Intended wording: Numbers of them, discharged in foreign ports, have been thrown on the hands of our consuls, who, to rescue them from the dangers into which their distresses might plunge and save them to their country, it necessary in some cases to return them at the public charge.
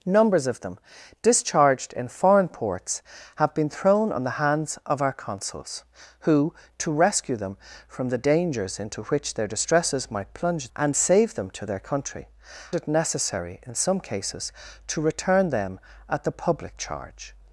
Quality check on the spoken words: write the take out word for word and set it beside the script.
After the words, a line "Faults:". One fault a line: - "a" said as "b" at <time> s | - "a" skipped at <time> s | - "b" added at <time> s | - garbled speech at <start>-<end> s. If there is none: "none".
Numbers of them, discharged in foreign ports, have been thrown on the hands of our consuls, who, to rescue them from the dangers into which their distresses might plunge and save them to their country, it necessary in some cases to return them at the public charge.
Faults:
none